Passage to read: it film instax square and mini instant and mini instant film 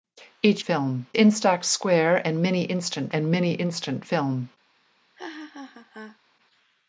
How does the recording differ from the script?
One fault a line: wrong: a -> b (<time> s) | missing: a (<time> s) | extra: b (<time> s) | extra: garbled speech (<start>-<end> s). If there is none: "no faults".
no faults